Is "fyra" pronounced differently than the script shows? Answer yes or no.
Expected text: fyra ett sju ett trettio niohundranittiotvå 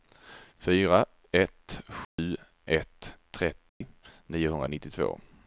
no